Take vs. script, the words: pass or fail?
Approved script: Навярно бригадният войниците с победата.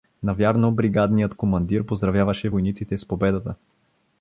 fail